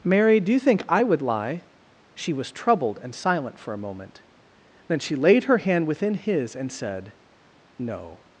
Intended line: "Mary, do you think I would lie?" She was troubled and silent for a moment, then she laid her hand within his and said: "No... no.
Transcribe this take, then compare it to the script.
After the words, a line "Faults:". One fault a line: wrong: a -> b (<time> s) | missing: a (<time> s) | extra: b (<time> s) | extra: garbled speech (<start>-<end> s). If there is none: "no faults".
"Mary, do you think I would lie?" She was troubled and silent for a moment, then she laid her hand within his and said: "No.
Faults:
missing: no (8.2 s)